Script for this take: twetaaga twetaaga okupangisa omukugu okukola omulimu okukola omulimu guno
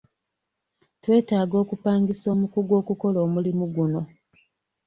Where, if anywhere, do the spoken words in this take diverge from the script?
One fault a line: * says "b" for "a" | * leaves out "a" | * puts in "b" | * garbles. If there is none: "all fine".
* leaves out "twetaaga"
* leaves out "okukola omulimu"